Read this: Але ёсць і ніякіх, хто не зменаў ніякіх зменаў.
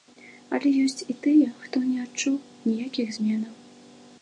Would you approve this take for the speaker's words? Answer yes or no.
no